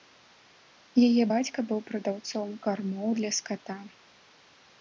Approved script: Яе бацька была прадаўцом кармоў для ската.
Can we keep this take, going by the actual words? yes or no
no